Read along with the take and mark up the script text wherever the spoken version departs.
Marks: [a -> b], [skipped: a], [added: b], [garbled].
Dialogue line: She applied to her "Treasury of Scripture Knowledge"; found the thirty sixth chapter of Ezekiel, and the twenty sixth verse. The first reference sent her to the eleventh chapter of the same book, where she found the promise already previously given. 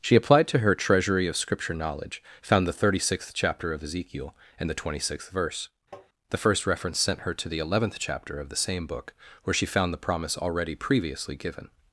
She applied to her "Treasury of Scripture Knowledge"; found the thirty sixth chapter of Ezekiel, and the twenty sixth verse. The first reference sent her to the eleventh chapter of the same book, where she found the promise already previously given.